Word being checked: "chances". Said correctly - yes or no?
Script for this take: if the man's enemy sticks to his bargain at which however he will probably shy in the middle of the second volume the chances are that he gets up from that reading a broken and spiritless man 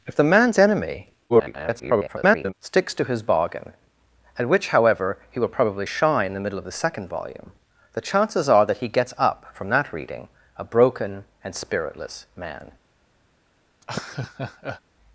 yes